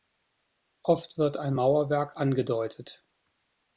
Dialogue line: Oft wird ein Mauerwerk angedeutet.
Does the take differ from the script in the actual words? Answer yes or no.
no